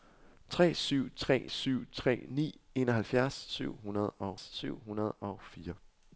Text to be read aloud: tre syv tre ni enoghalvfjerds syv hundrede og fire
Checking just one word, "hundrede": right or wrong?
right